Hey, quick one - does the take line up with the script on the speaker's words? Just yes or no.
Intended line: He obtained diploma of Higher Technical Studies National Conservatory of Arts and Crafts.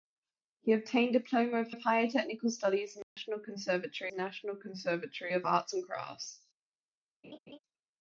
no